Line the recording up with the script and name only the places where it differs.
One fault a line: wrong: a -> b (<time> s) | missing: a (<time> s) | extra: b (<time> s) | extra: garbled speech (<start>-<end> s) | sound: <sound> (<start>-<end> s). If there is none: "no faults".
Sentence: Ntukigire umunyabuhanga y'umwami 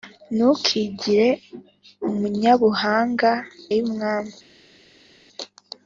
no faults